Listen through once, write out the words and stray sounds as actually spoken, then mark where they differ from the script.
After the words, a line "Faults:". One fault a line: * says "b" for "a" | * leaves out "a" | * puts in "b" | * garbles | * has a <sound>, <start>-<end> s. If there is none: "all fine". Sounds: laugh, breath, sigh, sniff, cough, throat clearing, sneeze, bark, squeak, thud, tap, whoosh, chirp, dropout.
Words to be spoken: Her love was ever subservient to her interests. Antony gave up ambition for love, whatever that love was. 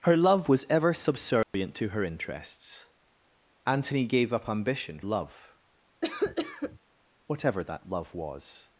Her love was ever subservient to her interests. Antony gave up ambition love, whatever that love was.
Faults:
* has a dropout, 1.4-1.5 s
* leaves out "for"
* has a cough, 6.0-6.8 s